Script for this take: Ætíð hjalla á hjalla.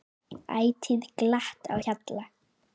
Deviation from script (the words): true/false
true